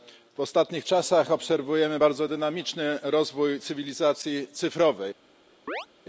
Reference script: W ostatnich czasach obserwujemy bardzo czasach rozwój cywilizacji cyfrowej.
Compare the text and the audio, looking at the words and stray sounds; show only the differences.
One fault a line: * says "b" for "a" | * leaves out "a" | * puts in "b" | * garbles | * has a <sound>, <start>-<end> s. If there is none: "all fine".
* says "dynamiczny" for "czasach"
* has a chirp, 5.7-5.9 s